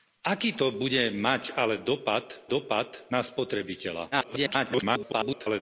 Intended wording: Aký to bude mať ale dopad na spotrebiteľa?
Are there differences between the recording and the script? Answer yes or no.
yes